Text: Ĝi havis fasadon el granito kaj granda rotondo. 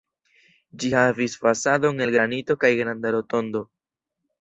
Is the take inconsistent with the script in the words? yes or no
no